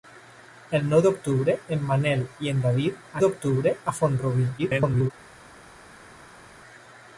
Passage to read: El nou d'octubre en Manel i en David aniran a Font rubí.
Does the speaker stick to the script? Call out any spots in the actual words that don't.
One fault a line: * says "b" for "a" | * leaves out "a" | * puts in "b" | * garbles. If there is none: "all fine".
* says "d'octubre" for "aniran"
* garbles